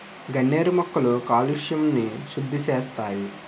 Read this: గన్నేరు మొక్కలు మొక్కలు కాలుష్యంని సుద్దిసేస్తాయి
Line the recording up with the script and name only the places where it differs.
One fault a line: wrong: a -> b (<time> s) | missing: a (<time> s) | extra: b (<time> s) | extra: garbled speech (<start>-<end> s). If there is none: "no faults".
missing: మొక్కలు (1.1 s)